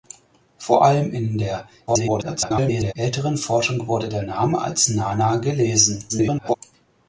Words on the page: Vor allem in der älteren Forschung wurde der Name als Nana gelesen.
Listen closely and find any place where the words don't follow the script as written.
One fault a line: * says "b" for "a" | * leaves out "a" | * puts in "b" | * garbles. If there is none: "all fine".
* garbles
* garbles